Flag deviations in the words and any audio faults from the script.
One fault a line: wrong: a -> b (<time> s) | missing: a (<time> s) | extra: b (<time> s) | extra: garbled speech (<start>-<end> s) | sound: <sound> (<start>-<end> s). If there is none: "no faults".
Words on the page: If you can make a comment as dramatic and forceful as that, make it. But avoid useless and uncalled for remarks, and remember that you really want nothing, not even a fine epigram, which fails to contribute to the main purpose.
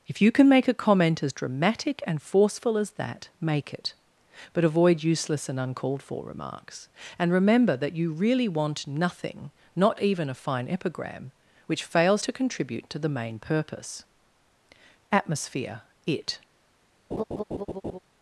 extra: Atmosphere It (15.1 s)
sound: laugh (17.1-18.0 s)